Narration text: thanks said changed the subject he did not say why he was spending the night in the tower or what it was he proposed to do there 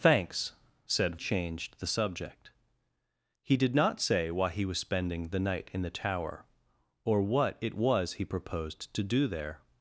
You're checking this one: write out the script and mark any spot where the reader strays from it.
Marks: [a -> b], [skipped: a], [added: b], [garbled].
thanks said changed the subject he did not say why he was spending the night in the tower or what it was he proposed to do there